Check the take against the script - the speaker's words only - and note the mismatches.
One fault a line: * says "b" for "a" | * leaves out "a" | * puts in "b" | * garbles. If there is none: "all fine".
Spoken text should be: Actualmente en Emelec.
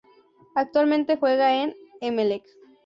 * puts in "juega"